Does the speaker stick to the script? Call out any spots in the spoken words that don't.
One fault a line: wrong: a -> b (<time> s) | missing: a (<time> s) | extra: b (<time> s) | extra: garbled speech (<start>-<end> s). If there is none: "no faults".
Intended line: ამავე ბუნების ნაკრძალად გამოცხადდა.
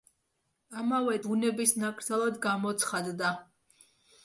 no faults